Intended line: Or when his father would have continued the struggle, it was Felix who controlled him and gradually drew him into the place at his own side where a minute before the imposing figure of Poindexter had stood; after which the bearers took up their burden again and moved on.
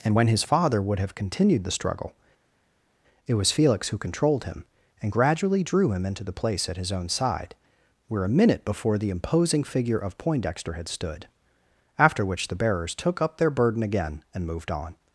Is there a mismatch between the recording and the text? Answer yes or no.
yes